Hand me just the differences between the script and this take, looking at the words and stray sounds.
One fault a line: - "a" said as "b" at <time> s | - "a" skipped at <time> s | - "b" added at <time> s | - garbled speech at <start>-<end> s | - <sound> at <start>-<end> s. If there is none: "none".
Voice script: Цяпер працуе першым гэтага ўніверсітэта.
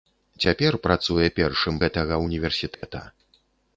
- dropout at 2.7-2.8 s